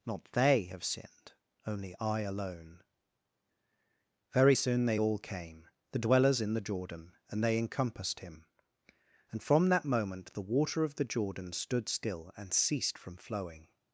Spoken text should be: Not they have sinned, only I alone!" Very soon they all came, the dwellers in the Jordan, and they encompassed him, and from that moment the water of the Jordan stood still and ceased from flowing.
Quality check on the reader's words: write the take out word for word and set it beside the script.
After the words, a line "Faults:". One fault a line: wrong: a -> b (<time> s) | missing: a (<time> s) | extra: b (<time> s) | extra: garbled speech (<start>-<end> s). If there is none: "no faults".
Not they have sinned, only I alone!" Very soon they all came, the dwellers in the Jordan, and they encompassed him, and from that moment the water of the Jordan stood still and ceased from flowing.
Faults:
no faults